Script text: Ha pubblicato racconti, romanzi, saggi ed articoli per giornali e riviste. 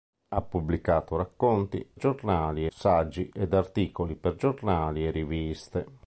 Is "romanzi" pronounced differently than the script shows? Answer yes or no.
yes